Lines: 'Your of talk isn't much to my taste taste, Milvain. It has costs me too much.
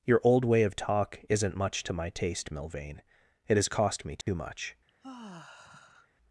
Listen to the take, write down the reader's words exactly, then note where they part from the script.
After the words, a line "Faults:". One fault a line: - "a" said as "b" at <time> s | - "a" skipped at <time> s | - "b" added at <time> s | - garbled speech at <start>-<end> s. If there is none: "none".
'Your old way of talk isn't much to my taste, Milvain. It has cost me too much.
Faults:
- "old way" added at 0.2 s
- "taste" skipped at 2.5 s
- "costs" said as "cost" at 3.7 s